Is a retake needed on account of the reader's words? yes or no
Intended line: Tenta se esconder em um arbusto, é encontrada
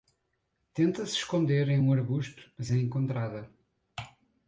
yes